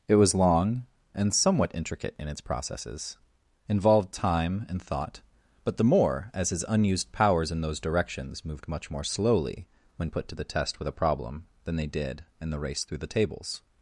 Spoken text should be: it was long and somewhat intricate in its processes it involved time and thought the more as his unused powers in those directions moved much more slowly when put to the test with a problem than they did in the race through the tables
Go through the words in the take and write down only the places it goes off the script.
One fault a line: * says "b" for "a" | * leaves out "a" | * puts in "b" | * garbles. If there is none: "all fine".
* leaves out "it"
* puts in "but"